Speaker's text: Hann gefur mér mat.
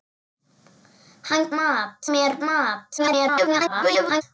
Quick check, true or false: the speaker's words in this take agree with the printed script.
false